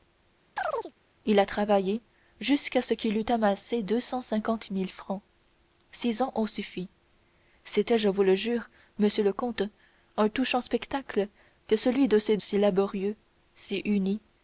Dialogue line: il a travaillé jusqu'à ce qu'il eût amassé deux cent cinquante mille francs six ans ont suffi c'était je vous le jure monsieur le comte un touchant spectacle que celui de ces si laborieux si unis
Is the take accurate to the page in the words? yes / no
yes